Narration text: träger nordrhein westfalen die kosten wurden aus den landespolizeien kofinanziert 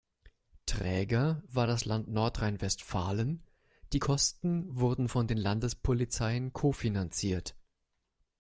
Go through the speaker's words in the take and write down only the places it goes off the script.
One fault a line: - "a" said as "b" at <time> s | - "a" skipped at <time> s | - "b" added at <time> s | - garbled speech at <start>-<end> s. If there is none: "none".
- "war das land" added at 1.4 s
- "aus" said as "von" at 5.1 s